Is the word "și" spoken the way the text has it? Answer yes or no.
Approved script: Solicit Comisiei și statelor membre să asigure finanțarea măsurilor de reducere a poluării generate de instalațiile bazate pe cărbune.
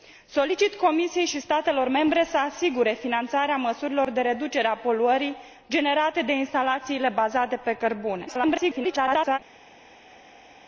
yes